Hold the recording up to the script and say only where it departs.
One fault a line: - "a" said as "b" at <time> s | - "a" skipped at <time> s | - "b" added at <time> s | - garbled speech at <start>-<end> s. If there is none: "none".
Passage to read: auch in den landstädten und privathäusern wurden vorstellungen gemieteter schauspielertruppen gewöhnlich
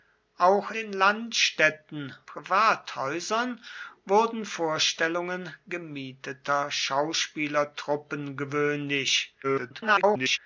- "in" skipped at 0.7 s
- "und" skipped at 2.1 s
- garbled speech at 9.4-10.4 s